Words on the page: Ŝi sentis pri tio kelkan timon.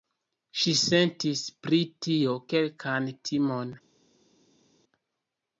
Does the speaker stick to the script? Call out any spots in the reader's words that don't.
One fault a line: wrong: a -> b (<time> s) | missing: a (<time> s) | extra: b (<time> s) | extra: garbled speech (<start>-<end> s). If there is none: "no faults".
no faults